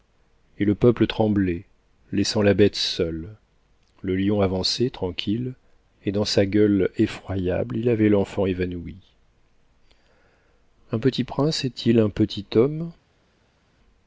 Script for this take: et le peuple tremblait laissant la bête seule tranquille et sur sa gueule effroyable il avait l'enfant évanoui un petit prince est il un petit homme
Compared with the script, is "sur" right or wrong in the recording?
wrong